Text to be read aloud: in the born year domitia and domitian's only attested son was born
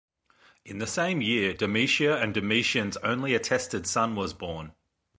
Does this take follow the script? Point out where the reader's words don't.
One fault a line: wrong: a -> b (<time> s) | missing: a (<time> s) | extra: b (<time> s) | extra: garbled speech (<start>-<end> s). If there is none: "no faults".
wrong: born -> same (0.9 s)